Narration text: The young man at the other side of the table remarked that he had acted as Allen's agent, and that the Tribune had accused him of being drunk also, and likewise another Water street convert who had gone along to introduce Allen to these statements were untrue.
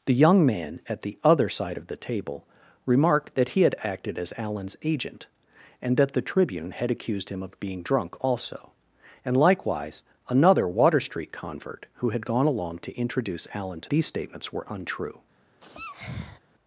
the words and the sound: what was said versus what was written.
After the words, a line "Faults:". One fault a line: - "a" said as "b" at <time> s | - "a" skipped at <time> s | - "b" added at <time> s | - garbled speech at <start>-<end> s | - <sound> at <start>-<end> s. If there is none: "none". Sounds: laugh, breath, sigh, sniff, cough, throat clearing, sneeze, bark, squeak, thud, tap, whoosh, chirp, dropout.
The young man at the other side of the table remarked that he had acted as Allen's agent, and that the Tribune had accused him of being drunk also, and likewise another Water street convert who had gone along to introduce Allen to these statements were untrue.
Faults:
- sneeze at 15.6-16.4 s